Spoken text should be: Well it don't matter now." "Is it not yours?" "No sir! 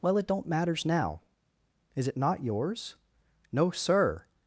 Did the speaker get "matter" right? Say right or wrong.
wrong